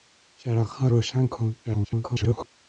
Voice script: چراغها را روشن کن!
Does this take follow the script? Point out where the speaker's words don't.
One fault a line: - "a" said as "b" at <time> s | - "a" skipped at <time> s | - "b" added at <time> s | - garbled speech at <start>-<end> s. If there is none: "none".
- "را" skipped at 0.9 s
- garbled speech at 1.6-2.5 s